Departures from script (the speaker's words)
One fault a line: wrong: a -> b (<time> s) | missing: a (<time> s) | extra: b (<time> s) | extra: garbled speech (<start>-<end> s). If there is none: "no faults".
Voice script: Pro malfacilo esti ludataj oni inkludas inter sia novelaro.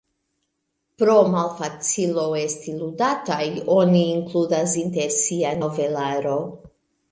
no faults